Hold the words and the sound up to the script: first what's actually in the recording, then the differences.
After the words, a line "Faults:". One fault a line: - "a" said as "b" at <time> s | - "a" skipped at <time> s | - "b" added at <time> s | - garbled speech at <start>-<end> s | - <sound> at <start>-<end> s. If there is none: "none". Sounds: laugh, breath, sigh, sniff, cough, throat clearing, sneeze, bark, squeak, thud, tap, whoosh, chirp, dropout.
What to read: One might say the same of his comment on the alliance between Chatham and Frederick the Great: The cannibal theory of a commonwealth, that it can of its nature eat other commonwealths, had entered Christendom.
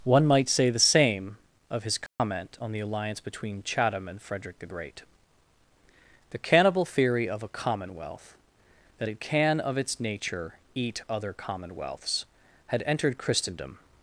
One might say the same of his comment on the alliance between Chatham and Frederick the Great: The cannibal theory of a commonwealth, that it can of its nature eat other commonwealths, had entered Christendom.
Faults:
- dropout at 2.1-2.2 s